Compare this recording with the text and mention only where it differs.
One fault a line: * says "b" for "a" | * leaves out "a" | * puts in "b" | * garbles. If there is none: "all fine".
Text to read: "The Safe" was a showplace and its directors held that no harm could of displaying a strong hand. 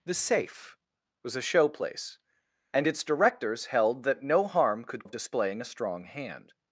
all fine